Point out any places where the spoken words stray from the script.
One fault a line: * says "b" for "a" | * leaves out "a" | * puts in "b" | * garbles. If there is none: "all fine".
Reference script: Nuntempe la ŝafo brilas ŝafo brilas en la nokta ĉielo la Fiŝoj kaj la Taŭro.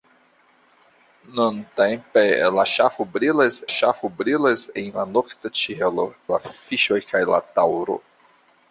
all fine